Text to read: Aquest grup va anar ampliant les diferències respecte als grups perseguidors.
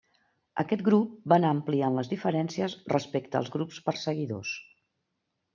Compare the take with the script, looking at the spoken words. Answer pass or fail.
pass